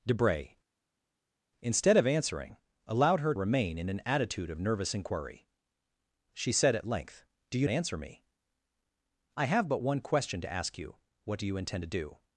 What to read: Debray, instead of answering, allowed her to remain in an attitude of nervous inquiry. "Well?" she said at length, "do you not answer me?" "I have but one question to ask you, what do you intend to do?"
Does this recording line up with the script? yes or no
no